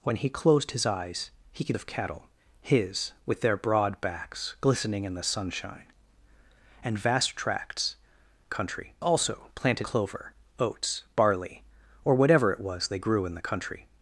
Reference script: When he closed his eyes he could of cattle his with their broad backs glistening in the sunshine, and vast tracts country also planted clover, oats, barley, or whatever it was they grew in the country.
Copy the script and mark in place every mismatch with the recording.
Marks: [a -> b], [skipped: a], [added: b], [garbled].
When he closed his eyes he could of cattle his with their broad backs glistening in the sunshine, and vast tracts country also planted clover, oats, barley, or whatever it was they grew in the country.